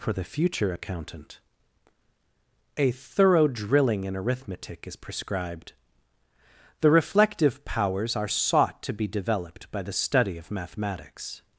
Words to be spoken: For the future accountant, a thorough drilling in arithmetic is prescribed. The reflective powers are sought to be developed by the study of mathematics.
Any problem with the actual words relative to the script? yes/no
no